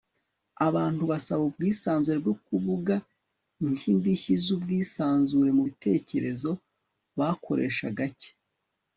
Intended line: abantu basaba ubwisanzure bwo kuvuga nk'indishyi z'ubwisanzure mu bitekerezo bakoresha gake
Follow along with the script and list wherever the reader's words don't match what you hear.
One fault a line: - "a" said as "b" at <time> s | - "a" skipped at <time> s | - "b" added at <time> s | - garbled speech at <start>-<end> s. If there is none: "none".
none